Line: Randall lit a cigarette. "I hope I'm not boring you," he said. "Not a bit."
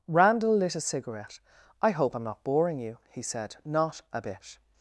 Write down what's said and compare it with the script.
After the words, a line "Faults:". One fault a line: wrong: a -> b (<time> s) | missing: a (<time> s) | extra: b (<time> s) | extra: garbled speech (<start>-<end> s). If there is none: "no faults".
Randall lit a cigarette. "I hope I'm not boring you," he said. "Not a bit."
Faults:
no faults